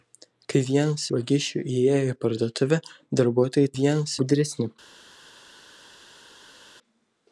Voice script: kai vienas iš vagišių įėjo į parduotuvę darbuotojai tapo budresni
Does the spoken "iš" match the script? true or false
false